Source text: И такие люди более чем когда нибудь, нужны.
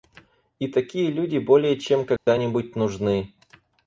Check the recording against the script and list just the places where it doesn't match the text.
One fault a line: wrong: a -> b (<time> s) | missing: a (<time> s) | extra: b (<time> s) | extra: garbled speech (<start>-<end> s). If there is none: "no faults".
no faults